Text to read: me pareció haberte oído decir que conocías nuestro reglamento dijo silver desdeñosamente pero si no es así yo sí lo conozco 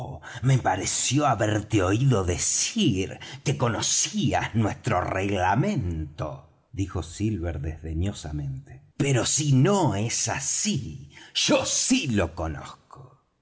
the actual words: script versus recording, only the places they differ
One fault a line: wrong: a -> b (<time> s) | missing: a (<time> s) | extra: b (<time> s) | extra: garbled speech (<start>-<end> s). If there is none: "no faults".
no faults